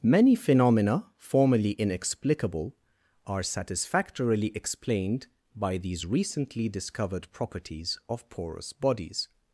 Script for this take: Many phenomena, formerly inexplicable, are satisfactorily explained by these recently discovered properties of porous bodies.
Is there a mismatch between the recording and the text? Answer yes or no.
no